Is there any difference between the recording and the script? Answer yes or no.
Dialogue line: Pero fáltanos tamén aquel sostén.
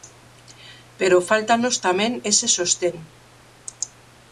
yes